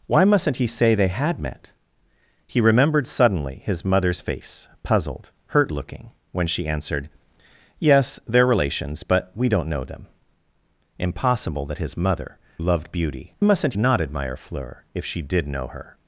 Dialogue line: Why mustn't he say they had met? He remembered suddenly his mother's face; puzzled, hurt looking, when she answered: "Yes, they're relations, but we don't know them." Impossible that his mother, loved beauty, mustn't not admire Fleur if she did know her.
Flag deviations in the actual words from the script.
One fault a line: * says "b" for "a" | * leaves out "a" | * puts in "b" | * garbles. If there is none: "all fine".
all fine